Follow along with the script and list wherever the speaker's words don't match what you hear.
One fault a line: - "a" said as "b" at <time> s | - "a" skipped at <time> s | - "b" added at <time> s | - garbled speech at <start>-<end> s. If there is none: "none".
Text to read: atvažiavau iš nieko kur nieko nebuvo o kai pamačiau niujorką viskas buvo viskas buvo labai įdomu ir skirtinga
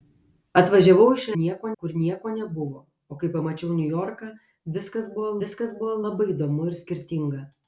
none